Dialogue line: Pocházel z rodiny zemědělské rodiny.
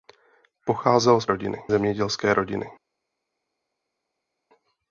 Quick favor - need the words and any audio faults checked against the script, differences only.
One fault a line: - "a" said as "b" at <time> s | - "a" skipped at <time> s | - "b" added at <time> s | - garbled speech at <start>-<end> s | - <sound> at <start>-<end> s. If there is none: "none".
none